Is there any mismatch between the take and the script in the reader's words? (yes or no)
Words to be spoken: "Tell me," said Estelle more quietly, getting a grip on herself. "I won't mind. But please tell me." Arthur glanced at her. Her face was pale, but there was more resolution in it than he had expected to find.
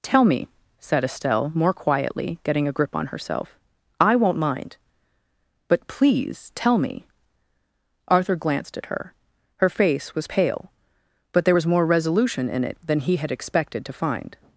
no